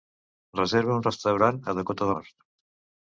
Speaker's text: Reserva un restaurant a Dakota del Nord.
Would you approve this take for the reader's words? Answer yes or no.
no